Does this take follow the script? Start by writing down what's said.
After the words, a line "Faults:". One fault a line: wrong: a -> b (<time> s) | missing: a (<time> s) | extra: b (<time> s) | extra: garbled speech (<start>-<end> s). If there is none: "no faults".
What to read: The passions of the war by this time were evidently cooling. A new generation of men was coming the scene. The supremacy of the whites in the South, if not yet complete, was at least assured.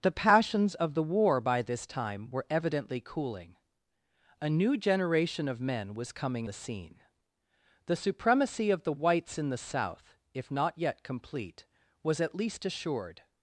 The passions of the war by this time were evidently cooling. A new generation of men was coming the scene. The supremacy of the whites in the South, if not yet complete, was at least assured.
Faults:
no faults